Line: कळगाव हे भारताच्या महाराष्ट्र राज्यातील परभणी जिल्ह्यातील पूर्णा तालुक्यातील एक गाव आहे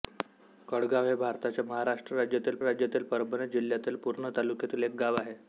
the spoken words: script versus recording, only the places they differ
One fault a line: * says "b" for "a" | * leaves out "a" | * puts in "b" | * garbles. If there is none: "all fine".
* puts in "राज्यातील"